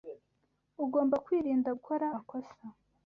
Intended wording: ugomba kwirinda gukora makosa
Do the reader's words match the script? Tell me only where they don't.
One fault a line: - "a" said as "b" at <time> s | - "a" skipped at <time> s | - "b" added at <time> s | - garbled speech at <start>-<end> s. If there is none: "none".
none